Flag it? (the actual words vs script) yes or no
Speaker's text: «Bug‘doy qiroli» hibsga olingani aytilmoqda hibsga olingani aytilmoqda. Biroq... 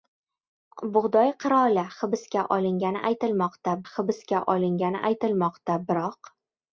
no